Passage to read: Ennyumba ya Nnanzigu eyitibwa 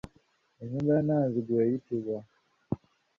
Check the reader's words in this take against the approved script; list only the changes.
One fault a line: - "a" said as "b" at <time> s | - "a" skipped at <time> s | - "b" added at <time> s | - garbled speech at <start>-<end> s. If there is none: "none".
none